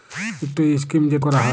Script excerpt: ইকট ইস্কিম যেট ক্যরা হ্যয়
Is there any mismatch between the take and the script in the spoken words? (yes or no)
no